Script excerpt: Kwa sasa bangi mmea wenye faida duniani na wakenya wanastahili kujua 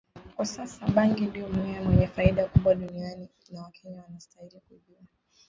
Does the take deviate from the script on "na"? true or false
false